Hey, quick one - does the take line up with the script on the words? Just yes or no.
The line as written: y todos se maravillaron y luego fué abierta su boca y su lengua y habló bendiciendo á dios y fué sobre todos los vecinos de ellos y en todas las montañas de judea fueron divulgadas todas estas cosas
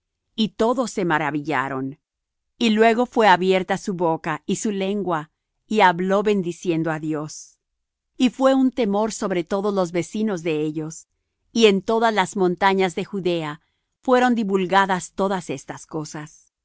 no